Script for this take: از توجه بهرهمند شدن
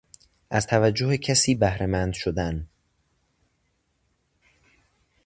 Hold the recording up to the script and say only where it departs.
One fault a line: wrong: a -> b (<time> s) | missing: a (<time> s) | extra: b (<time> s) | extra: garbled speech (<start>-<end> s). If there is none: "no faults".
extra: کسی (1.2 s)